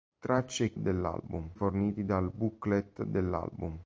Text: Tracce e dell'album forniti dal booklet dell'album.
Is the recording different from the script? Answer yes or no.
no